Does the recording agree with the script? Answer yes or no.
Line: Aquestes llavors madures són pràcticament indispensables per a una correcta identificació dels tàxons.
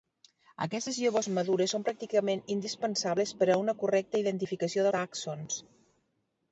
no